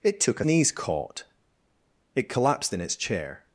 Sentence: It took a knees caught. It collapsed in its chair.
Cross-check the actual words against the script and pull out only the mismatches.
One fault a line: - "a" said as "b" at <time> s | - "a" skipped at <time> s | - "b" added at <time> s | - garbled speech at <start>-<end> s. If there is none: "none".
none